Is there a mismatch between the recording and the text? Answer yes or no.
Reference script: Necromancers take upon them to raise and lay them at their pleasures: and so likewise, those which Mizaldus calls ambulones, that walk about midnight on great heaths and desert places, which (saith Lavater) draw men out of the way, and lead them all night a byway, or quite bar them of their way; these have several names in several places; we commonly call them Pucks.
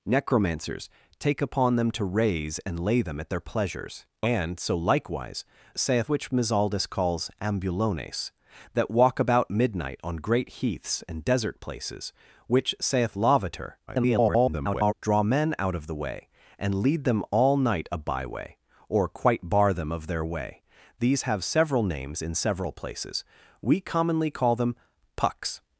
yes